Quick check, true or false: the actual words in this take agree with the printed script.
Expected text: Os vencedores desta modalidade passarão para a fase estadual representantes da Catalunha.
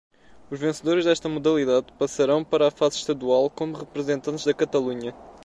false